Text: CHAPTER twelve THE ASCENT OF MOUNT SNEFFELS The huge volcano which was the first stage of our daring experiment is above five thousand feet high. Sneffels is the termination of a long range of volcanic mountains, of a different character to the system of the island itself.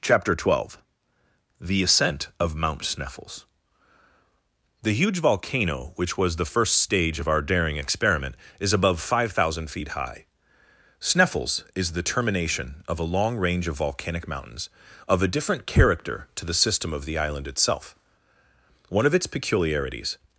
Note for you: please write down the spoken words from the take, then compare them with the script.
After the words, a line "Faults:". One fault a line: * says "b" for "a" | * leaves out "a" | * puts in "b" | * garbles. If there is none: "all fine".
CHAPTER twelve THE ASCENT OF MOUNT SNEFFELS The huge volcano which was the first stage of our daring experiment is above five thousand feet high. Sneffels is the termination of a long range of volcanic mountains, of a different character to the system of the island itself. One of its peculiarities
Faults:
* puts in "One of its peculiarities"